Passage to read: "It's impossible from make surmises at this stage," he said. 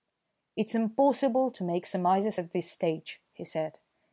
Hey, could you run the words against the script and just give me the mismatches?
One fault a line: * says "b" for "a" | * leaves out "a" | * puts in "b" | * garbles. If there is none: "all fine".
* says "to" for "from"